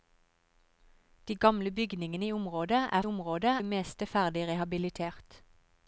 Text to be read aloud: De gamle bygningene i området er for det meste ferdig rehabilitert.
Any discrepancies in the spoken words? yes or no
yes